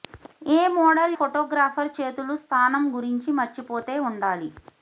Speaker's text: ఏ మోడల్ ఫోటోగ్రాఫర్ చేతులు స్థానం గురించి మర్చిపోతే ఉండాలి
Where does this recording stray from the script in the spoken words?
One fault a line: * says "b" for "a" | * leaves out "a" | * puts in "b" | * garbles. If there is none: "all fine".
all fine